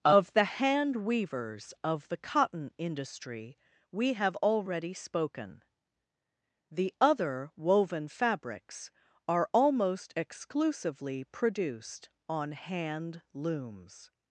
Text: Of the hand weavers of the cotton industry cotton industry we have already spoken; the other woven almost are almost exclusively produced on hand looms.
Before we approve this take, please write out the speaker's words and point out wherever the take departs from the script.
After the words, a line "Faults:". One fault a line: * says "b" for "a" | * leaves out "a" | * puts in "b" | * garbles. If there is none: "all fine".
Of the hand weavers of the cotton industry we have already spoken; the other woven fabrics are almost exclusively produced on hand looms.
Faults:
* leaves out "cotton industry"
* says "fabrics" for "almost"